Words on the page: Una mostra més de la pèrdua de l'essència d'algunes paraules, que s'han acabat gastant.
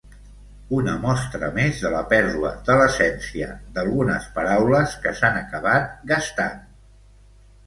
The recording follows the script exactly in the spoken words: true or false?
true